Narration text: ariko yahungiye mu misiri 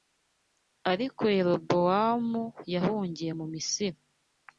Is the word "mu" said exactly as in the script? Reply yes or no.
yes